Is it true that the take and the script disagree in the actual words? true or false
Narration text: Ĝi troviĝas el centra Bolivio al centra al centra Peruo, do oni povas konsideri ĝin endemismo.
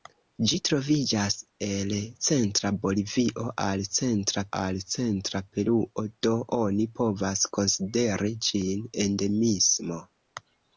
false